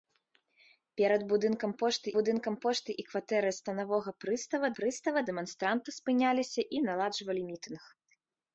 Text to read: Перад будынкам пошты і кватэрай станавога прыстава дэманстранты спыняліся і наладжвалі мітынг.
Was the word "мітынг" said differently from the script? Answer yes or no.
no